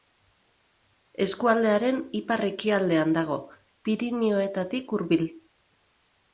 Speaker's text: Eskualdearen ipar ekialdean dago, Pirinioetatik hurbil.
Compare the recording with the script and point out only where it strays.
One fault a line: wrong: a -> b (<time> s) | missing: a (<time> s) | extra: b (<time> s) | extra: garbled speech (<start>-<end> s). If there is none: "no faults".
no faults